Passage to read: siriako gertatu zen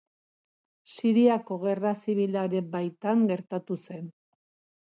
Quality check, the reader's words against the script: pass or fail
fail